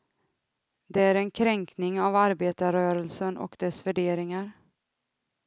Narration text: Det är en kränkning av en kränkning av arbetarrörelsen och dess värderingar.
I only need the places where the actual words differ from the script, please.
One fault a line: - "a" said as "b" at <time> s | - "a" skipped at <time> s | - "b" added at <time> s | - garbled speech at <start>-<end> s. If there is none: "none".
- "en kränkning av" skipped at 2.1 s